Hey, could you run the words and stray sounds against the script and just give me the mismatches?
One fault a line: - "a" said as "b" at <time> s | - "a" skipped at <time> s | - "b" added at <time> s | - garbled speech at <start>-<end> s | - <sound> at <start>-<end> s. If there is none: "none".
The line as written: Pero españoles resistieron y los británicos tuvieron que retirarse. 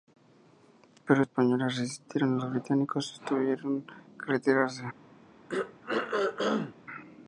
- throat clearing at 5.5-6.8 s